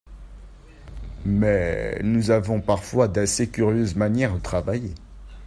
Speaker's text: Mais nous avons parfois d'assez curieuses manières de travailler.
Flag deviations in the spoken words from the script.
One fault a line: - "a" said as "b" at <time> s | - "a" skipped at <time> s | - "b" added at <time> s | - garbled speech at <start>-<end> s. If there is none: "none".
- "de" skipped at 4.4 s